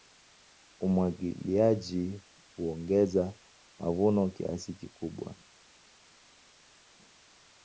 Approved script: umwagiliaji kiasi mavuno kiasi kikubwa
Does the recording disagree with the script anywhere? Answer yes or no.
yes